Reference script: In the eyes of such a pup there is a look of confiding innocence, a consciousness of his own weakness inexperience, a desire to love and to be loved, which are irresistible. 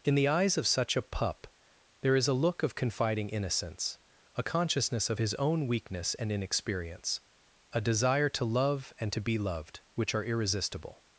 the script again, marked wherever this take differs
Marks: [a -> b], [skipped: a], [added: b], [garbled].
In the eyes of such a pup there is a look of confiding innocence, a consciousness of his own weakness [added: and] inexperience, a desire to love and to be loved, which are irresistible.